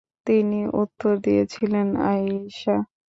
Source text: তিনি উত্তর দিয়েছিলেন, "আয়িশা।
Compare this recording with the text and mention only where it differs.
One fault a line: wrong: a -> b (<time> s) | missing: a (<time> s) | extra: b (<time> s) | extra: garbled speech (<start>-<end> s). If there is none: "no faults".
no faults